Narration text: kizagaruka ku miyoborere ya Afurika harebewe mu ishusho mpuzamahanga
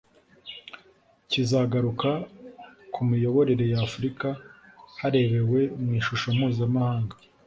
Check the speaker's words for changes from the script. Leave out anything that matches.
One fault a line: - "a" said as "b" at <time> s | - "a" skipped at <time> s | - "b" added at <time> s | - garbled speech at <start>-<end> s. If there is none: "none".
none